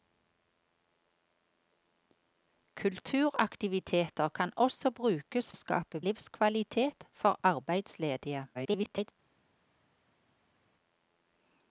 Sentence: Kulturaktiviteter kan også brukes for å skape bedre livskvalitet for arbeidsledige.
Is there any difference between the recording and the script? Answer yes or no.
yes